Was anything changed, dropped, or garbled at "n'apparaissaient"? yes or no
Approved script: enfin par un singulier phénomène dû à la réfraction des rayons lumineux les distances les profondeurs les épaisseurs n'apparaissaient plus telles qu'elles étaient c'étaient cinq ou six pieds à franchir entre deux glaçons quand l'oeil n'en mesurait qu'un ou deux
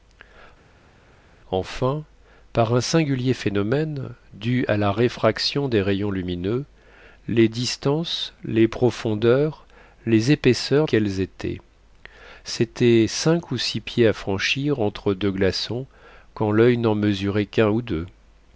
yes